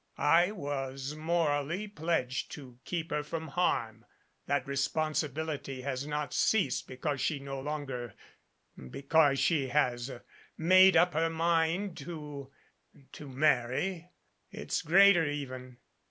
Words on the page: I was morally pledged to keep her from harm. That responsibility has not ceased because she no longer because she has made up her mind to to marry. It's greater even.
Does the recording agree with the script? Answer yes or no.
yes